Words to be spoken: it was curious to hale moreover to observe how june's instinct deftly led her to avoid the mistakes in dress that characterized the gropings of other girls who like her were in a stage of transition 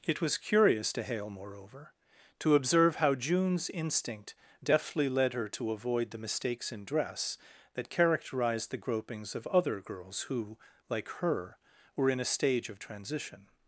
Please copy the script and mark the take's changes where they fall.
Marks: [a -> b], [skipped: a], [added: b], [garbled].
it was curious to hale moreover to observe how june's instinct deftly led her to avoid the mistakes in dress that characterized the gropings of other girls who like her were in a stage of transition